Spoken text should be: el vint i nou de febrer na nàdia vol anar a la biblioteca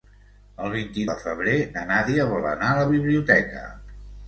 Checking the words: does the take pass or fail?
fail